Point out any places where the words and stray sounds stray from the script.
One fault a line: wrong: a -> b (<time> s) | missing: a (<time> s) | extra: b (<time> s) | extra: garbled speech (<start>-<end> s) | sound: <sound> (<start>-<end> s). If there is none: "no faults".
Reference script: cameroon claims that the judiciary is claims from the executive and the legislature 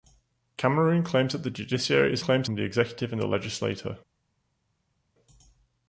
no faults